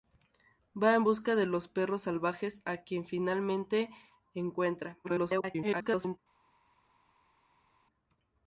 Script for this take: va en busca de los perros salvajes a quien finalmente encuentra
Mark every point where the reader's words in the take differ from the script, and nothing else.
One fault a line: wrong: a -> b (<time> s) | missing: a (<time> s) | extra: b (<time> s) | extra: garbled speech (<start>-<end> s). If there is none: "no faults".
extra: garbled speech (5.0-6.2 s)